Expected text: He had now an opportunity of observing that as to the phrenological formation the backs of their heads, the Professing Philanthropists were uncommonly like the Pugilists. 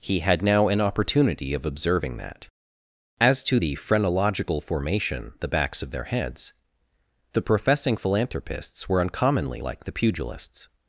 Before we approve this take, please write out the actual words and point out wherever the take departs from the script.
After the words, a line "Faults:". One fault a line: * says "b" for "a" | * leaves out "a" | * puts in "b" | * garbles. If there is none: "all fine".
He had now an opportunity of observing that as to the phrenological formation the backs of their heads, the Professing Philanthropists were uncommonly like the Pugilists.
Faults:
all fine